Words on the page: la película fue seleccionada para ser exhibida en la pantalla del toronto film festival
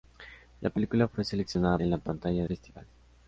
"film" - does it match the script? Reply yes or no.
no